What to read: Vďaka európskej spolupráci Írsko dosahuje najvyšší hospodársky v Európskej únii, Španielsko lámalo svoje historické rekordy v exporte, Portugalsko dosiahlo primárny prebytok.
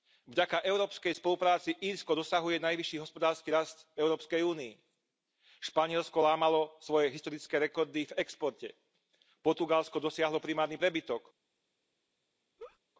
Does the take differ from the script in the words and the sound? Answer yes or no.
yes